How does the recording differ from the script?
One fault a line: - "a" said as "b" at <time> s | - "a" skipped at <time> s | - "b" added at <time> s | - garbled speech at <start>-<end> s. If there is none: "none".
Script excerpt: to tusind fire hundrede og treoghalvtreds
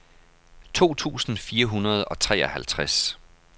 none